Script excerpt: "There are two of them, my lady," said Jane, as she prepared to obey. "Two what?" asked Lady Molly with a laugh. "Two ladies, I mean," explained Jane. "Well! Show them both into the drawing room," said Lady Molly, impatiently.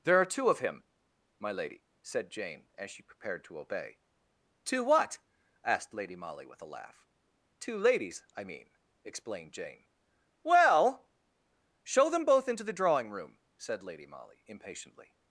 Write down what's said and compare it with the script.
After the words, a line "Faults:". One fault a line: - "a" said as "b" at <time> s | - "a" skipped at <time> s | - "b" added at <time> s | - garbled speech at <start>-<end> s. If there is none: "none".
"There are two of him, my lady," said Jane, as she prepared to obey. "Two what?" asked Lady Molly with a laugh. "Two ladies, I mean," explained Jane. "Well! Show them both into the drawing room," said Lady Molly, impatiently.
Faults:
- "them" said as "him" at 0.6 s